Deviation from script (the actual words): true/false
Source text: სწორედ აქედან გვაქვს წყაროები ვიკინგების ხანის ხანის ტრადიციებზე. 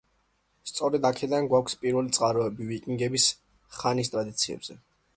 true